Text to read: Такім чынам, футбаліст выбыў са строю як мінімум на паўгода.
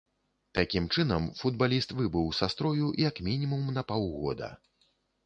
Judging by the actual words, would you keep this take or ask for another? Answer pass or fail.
pass